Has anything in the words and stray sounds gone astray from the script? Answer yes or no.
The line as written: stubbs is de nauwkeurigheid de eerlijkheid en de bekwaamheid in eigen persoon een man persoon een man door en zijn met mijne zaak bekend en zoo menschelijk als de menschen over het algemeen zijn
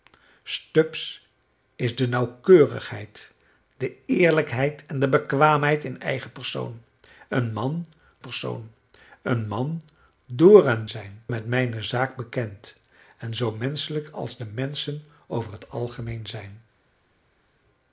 no